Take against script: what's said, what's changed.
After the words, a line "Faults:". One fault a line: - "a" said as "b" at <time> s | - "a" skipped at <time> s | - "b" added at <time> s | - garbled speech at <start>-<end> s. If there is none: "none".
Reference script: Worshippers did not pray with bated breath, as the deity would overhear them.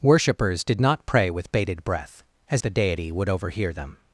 Worshippers did not pray with bated breath, as the deity would overhear them.
Faults:
none